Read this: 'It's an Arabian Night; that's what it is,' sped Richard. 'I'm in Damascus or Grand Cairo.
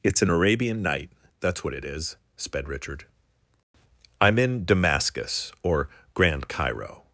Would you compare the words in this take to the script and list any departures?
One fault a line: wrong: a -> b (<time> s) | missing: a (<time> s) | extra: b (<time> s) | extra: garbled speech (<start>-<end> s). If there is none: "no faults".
no faults